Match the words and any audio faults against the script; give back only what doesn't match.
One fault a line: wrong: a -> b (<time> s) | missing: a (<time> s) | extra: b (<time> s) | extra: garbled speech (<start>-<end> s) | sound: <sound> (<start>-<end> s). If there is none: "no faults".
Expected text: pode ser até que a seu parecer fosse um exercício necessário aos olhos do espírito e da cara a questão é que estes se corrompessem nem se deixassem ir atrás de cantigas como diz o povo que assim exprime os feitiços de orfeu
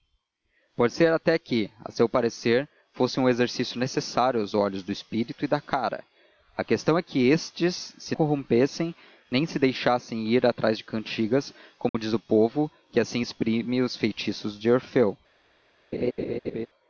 sound: dropout (11.9-11.9 s)
sound: laugh (15.9-16.7 s)